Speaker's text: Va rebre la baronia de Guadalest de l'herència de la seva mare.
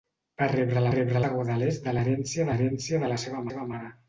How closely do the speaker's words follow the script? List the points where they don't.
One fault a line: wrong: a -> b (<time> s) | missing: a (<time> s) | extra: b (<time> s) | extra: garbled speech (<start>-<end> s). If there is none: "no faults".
wrong: baronia -> rebre (0.9 s)
extra: l'herència (2.5 s)
extra: seva (3.5 s)